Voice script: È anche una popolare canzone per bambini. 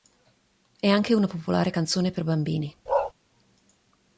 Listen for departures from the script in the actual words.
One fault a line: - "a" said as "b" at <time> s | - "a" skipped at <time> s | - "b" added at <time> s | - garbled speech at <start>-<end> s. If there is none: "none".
none